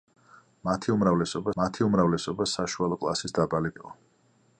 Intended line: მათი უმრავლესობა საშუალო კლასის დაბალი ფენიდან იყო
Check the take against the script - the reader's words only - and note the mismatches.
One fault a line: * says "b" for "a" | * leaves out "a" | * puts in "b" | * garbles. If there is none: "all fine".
* puts in "მათი უმრავლესობა"
* leaves out "ფენიდან"